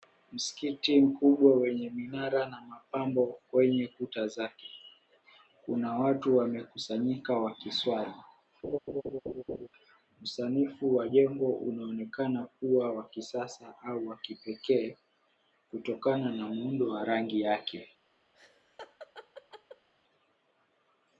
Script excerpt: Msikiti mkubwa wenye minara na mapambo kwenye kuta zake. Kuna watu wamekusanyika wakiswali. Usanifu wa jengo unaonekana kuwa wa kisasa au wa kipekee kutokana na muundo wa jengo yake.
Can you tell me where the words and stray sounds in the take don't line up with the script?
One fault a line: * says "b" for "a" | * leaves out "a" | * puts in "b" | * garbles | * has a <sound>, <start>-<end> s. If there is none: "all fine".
* has a laugh, 8.6-9.7 s
* says "rangi" for "jengo"
* has a laugh, 18.3-19.9 s